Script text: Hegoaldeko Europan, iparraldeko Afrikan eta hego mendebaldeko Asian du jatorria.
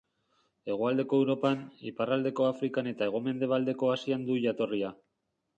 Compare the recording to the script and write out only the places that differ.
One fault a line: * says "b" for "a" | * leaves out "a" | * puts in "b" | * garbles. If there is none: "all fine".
all fine